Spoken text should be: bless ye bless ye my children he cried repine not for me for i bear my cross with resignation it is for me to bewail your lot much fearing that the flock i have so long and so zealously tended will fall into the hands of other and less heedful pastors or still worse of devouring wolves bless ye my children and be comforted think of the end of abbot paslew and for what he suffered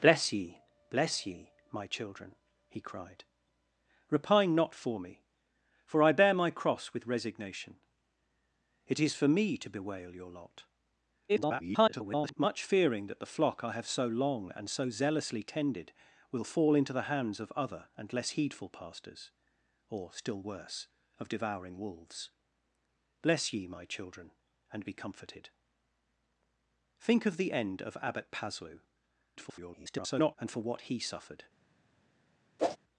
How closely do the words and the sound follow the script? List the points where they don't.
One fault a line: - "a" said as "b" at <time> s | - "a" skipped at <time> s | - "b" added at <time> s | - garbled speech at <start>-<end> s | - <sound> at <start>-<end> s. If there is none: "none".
- garbled speech at 11.3-12.3 s
- garbled speech at 29.4-30.4 s
- whoosh at 32.6-32.8 s